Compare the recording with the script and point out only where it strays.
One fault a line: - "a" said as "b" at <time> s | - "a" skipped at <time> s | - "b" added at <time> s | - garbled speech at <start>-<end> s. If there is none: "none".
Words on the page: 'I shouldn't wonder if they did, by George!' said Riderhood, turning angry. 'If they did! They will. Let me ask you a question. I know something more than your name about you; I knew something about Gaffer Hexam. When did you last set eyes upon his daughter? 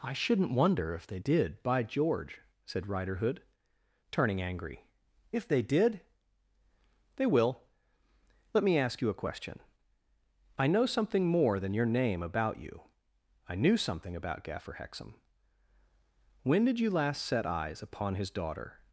none